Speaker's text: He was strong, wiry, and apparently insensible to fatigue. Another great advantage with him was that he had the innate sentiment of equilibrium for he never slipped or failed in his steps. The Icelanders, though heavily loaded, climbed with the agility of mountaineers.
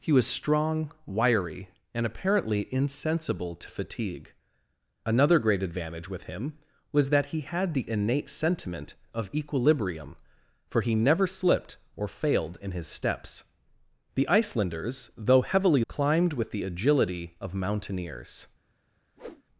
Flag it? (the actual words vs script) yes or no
yes